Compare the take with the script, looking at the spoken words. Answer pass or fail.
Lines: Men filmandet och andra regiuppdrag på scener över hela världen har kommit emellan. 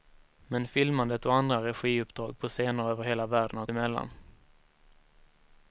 fail